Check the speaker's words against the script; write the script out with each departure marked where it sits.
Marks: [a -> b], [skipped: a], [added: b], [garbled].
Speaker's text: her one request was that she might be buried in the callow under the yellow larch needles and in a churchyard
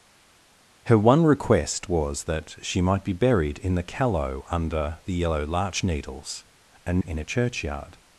her one request was that she might be buried in the callow under the yellow larch needles and in a churchyard